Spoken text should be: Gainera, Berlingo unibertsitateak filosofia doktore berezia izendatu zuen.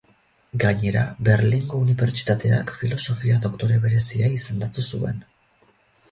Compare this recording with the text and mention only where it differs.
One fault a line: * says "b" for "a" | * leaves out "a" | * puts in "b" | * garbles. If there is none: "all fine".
all fine